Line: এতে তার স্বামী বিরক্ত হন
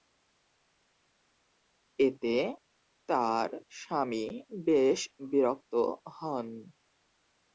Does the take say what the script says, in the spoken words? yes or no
no